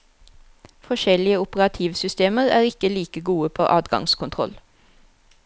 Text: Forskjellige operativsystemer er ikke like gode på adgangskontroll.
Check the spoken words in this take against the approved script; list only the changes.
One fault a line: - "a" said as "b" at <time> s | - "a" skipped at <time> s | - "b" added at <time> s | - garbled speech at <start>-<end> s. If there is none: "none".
none